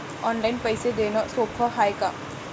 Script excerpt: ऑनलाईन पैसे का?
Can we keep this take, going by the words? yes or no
no